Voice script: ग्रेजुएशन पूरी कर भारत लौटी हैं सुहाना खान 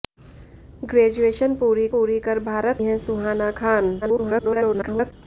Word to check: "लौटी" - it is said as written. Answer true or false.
false